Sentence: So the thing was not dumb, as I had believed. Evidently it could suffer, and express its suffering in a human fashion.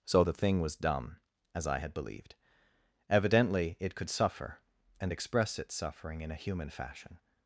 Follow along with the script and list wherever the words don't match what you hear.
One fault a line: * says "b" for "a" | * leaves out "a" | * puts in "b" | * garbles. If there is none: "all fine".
* leaves out "not"